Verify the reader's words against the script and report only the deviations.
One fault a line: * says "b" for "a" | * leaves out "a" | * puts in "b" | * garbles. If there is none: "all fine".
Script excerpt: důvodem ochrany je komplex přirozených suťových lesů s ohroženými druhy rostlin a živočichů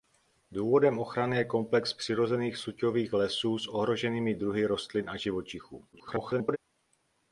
* garbles